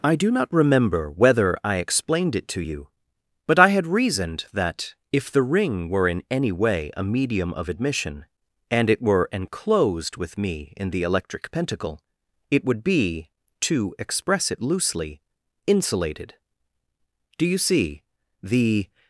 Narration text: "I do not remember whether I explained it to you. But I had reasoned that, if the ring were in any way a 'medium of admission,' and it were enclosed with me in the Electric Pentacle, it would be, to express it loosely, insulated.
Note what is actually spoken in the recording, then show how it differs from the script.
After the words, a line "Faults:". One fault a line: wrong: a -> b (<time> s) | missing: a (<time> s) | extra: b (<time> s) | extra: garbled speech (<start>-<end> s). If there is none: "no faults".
"I do not remember whether I explained it to you. But I had reasoned that, if the ring were in any way a 'medium of admission,' and it were enclosed with me in the Electric Pentacle, it would be, to express it loosely, insulated. Do you see? The
Faults:
extra: Do you see The (17.4 s)